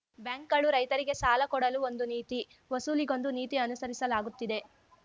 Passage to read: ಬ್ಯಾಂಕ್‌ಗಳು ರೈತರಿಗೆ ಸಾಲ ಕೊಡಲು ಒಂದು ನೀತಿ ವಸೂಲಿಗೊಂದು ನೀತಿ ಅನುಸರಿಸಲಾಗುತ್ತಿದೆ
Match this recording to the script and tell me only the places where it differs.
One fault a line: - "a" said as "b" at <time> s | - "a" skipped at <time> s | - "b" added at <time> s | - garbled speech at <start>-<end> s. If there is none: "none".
none